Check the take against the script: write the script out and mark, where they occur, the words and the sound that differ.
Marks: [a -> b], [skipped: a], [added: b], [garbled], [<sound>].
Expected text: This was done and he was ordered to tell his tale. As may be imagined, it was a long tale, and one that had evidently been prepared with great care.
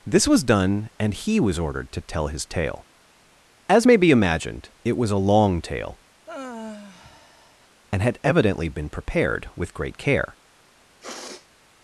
This was done and he was ordered to tell his tale. As may be imagined, it was a long tale, [sigh] and [skipped: one that] had evidently been prepared with great care. [sniff]